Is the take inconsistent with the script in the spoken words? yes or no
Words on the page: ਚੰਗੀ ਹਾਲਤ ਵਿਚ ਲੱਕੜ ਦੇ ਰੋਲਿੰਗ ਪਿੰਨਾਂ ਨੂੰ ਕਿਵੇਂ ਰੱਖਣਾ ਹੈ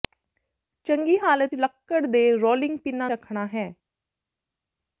yes